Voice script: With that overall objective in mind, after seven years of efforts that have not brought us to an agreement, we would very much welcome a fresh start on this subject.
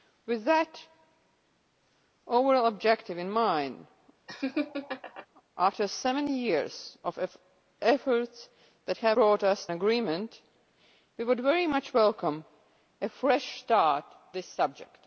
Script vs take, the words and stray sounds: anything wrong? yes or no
yes